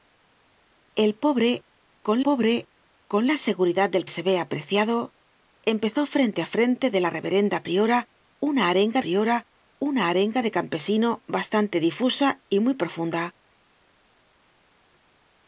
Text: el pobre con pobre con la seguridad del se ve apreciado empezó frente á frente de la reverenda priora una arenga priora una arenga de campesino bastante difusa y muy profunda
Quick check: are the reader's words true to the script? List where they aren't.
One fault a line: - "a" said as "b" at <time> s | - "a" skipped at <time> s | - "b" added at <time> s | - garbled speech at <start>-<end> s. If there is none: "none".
none